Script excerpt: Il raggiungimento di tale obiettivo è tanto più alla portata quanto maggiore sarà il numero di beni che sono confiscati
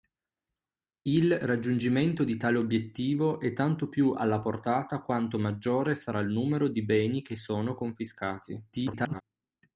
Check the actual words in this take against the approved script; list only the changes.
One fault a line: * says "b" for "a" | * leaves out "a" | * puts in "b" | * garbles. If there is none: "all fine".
* garbles